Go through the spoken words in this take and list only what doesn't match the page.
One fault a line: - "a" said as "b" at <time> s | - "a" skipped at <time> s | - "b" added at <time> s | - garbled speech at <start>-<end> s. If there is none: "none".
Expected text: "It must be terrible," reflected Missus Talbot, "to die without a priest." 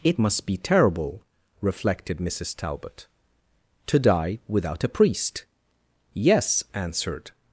- "Yes answered" added at 6.1 s